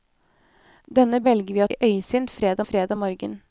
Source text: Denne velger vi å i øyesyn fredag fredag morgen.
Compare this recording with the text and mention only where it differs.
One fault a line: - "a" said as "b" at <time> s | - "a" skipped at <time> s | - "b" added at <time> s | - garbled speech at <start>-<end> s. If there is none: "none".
none